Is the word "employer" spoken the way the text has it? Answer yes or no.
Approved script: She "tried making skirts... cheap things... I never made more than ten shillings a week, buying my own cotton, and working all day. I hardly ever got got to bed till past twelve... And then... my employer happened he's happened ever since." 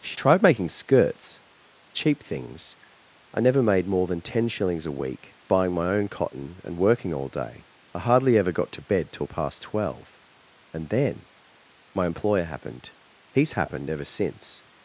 yes